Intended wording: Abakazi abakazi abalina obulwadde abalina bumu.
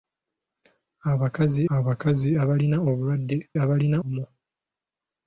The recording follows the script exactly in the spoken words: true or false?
true